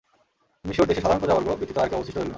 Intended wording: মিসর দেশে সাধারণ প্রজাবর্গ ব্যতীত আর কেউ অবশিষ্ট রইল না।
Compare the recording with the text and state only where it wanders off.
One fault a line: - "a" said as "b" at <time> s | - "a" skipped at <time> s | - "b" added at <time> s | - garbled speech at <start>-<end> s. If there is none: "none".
none